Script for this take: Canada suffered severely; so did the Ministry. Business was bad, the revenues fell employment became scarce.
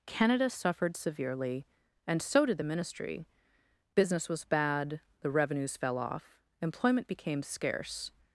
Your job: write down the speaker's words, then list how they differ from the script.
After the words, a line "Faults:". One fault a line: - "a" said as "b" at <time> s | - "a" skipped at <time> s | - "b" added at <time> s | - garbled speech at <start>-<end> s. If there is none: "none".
Canada suffered severely; and so did the Ministry. Business was bad, the revenues fell off, employment became scarce.
Faults:
- "and" added at 2.1 s
- "off" added at 6.0 s